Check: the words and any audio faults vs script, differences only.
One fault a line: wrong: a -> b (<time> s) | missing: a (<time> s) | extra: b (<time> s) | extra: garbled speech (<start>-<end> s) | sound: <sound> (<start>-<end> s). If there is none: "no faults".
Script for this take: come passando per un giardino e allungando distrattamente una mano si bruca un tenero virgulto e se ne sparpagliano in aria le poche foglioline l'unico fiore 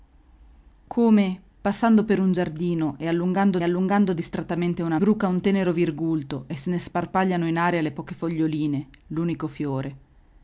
extra: allungando (3.6 s)
missing: mano si (5.0 s)